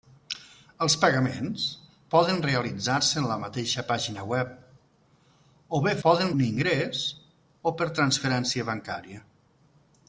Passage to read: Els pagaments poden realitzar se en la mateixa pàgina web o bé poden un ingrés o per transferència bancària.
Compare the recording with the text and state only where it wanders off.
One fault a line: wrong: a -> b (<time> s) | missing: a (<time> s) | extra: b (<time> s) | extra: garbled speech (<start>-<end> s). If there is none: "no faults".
no faults